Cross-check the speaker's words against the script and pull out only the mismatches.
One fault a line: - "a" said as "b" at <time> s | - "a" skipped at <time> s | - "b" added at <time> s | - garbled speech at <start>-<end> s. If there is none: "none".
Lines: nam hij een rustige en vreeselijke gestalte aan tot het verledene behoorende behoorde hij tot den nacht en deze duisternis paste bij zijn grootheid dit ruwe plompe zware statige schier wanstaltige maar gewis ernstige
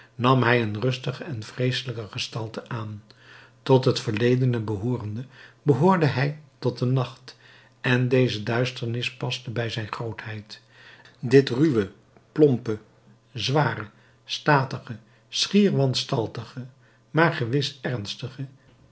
none